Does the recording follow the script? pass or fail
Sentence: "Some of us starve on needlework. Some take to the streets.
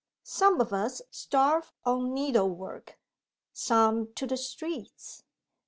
fail